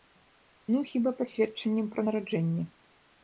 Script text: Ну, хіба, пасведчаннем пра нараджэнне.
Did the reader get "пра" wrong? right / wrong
right